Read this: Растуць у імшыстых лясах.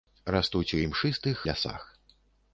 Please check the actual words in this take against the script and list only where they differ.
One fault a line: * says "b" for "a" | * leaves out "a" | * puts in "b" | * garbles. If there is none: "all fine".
all fine